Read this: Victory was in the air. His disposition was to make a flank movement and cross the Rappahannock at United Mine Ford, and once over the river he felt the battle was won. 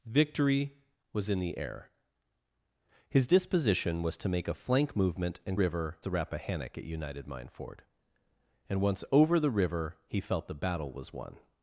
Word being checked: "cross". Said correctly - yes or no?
no